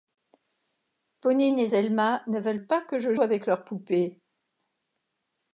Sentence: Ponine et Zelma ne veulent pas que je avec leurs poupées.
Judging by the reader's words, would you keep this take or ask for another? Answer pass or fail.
pass